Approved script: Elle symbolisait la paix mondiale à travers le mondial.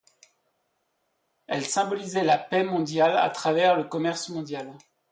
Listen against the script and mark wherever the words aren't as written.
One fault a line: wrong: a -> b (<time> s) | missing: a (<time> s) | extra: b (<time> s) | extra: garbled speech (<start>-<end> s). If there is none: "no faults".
extra: commerce (3.8 s)